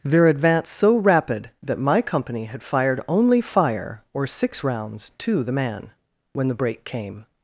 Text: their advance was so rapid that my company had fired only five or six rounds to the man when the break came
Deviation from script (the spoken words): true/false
true